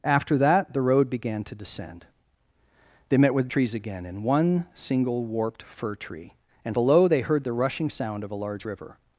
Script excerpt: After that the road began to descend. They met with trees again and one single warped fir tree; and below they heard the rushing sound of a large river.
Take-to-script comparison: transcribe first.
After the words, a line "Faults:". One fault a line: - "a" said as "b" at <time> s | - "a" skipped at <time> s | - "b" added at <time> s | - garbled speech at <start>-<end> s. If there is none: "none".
After that the road began to descend. They met with trees again and one single warped fir tree; and below they heard the rushing sound of a large river.
Faults:
none